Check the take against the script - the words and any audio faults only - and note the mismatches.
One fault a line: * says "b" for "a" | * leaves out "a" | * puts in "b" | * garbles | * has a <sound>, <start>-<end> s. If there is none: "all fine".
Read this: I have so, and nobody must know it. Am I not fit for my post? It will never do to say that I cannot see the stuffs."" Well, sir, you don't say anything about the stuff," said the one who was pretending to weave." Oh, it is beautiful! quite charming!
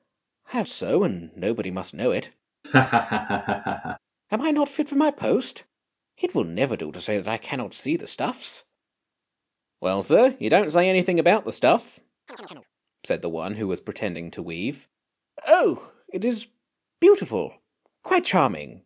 * has a laugh, 2.6-4.0 s
* has a chirp, 12.3-12.7 s